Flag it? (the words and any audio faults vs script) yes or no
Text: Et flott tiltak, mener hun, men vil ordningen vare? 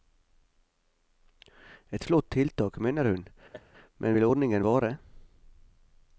yes